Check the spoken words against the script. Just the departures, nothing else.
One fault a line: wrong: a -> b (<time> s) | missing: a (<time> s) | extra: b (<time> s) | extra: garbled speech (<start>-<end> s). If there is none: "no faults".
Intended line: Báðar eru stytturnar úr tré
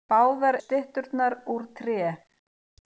missing: eru (0.6 s)